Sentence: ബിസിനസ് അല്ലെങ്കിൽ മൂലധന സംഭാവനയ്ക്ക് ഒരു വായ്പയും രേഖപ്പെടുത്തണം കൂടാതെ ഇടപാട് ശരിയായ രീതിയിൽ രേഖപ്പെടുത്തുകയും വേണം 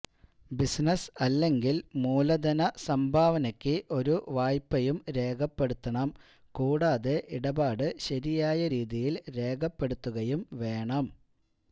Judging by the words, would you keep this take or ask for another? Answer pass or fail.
pass